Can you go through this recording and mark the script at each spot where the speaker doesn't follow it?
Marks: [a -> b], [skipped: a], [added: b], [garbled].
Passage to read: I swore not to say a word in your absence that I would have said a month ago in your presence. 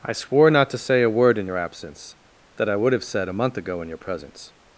I swore not to say a word in your absence that I would have said a month ago in your presence.